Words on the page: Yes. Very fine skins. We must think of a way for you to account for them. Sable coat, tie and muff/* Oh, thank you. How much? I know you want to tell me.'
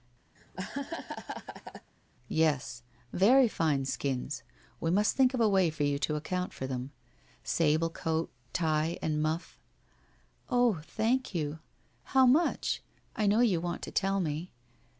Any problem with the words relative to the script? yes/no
no